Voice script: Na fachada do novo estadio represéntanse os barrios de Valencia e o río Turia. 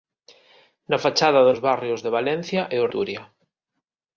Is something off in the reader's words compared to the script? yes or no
yes